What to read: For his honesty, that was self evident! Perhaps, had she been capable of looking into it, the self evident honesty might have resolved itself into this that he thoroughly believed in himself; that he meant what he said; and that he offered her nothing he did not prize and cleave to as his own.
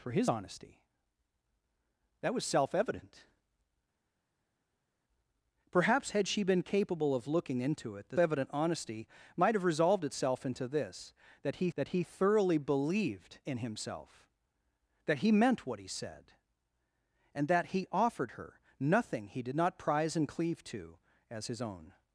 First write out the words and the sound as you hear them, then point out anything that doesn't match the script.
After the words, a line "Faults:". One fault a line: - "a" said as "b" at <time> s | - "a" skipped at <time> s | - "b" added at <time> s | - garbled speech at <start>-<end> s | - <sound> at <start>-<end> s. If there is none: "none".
For his honesty, that was self evident! Perhaps, had she been capable of looking into it, the evident honesty might have resolved itself into this that he that he thoroughly believed in himself; that he meant what he said; and that he offered her nothing he did not prize and cleave to as his own.
Faults:
- "self" skipped at 8.2 s
- "that he" added at 11.7 s